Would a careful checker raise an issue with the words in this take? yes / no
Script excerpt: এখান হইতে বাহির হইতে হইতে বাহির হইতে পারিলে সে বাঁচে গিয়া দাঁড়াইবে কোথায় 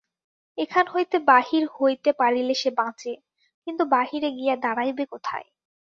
yes